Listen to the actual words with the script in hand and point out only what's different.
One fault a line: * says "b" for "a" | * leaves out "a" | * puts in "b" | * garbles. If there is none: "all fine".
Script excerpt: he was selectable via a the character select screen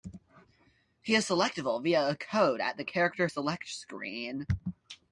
* says "is" for "was"
* puts in "code at"